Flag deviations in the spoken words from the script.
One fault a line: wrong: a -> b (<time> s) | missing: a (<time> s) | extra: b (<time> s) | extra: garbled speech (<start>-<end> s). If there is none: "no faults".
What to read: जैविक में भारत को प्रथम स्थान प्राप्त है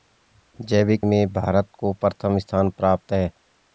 no faults